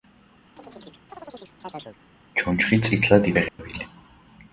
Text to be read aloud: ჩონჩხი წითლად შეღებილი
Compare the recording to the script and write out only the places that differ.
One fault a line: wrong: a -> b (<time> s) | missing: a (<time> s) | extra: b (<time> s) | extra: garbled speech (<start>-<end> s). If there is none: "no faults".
no faults